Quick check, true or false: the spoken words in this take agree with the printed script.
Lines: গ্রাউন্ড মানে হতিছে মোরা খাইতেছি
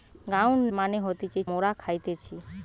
true